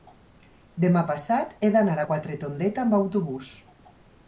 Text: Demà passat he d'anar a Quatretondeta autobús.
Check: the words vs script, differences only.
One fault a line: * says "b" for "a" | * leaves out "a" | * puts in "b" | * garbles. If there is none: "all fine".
* puts in "amb"